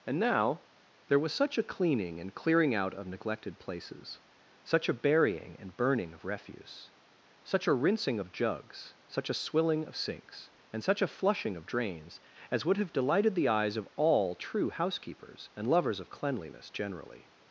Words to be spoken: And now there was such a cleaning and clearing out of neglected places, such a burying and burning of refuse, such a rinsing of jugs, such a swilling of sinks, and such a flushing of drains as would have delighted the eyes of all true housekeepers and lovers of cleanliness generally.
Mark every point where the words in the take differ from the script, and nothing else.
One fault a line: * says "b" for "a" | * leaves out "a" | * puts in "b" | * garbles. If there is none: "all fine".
all fine